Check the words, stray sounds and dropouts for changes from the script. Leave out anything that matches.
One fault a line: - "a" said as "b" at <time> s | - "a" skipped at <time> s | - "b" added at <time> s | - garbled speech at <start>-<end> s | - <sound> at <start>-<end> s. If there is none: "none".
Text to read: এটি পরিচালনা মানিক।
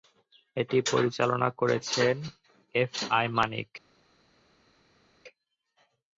- "করেছেন এফ আই" added at 1.6 s